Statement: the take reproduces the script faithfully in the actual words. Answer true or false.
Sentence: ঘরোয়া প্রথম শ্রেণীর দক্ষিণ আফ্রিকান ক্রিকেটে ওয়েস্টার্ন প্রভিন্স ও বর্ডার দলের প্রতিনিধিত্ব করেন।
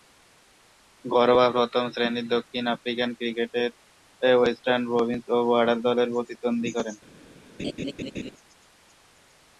true